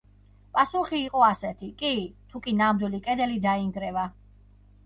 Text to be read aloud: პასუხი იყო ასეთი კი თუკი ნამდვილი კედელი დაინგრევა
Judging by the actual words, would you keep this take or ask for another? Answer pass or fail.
pass